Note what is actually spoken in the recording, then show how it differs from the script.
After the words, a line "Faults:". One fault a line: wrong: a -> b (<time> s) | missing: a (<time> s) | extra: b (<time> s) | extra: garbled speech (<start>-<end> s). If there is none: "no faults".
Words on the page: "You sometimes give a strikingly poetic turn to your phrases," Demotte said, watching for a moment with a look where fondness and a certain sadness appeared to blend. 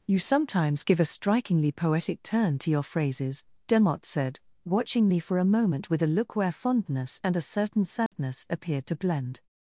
"You sometimes give a strikingly poetic turn to your phrases," Demotte said, watching me for a moment with a look where fondness and a certain sadness appeared to blend.
Faults:
extra: me (5.1 s)